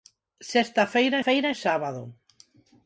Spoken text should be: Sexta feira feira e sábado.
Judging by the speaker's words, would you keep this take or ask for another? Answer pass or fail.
pass